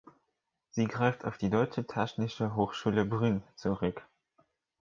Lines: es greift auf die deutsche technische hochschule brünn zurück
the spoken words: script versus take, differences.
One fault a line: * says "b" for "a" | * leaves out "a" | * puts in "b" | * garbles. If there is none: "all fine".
* says "sie" for "es"